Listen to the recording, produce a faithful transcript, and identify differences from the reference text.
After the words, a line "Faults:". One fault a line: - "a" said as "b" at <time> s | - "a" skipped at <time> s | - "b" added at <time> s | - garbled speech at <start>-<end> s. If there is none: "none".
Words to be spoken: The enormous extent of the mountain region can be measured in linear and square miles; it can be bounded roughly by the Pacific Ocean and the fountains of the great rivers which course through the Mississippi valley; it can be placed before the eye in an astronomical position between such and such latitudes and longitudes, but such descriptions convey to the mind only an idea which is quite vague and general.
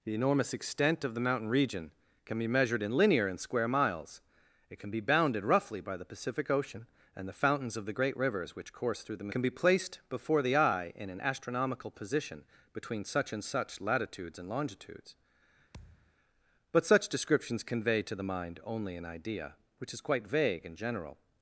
The enormous extent of the mountain region can be measured in linear and square miles; it can be bounded roughly by the Pacific Ocean and the fountains of the great rivers which course through the Can be placed before the eye in an astronomical position between such and such latitudes and longitudes, but such descriptions convey to the mind only an idea which is quite vague and general.
Faults:
- "Mississippi valley it" skipped at 9.3 s